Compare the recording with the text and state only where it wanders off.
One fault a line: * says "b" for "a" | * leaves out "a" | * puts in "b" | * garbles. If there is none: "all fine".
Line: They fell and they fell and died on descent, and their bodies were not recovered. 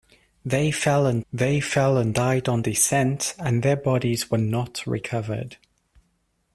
all fine